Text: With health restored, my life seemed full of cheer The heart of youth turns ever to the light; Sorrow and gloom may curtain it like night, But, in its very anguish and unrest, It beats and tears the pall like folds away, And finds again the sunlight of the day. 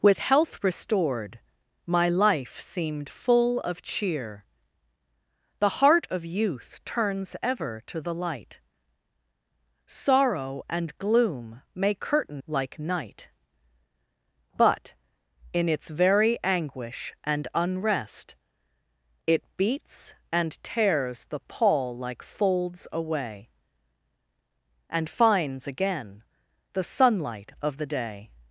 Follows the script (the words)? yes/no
no